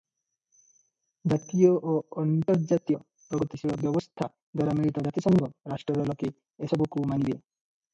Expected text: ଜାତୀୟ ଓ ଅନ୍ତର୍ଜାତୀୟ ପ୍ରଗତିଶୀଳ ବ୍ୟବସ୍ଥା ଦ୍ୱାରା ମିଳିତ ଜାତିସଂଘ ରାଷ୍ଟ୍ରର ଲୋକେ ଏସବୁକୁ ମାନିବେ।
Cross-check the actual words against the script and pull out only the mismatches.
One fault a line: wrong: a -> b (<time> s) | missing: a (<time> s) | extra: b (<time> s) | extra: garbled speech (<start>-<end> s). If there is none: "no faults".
no faults